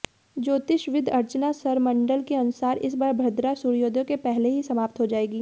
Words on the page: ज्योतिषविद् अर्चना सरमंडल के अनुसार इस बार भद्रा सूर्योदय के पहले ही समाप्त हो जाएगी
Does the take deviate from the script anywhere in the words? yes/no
no